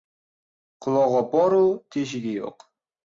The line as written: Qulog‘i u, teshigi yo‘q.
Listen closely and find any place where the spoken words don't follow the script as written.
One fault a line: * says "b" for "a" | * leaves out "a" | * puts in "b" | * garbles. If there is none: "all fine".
* puts in "bor"